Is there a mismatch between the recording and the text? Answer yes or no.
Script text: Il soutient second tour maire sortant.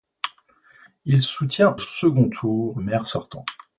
no